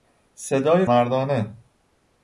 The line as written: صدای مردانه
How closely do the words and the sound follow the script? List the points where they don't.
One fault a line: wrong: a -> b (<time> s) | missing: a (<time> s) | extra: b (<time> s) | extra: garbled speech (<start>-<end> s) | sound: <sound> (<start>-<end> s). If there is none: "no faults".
no faults